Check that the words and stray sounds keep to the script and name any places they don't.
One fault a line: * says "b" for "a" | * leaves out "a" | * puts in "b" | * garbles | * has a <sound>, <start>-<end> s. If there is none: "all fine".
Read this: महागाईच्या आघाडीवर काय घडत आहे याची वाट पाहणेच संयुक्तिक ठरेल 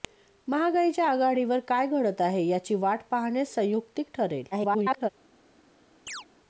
* garbles
* has a chirp, 6.1-6.3 s